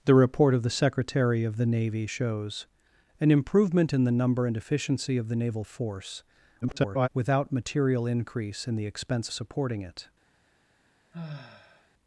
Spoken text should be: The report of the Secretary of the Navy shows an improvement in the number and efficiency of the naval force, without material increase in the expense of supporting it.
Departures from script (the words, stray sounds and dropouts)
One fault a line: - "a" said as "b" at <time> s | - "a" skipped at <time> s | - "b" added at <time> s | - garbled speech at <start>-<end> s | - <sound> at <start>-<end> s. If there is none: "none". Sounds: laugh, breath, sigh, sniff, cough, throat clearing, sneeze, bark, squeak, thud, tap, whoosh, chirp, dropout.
- garbled speech at 6.6-7.1 s
- "of" skipped at 9.3 s
- sigh at 11.1-11.9 s